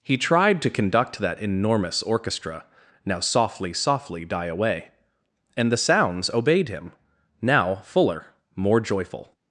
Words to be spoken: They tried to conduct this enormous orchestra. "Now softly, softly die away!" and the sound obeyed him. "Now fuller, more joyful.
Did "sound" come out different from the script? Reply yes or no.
yes